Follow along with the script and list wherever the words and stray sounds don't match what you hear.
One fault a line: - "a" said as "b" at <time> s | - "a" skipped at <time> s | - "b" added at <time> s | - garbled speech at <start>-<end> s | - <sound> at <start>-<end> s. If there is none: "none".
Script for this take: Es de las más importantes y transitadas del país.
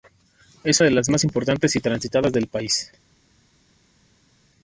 none